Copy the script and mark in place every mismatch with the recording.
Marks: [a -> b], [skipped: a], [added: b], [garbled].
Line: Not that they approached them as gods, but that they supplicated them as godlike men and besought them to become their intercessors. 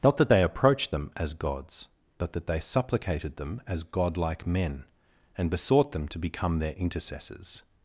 Not that they approached them as gods, but that they supplicated them as godlike men and besought them to become their intercessors.